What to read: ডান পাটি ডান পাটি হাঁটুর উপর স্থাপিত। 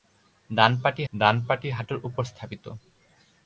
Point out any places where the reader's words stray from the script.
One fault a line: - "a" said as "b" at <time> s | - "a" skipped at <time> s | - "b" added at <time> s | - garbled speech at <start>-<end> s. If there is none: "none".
none